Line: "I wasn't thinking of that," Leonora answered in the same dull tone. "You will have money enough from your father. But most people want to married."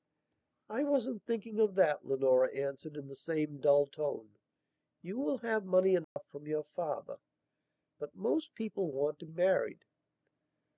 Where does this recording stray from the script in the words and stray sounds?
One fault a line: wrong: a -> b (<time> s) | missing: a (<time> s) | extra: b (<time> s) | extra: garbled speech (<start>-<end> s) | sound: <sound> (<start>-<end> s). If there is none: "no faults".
sound: dropout (6.0-6.2 s)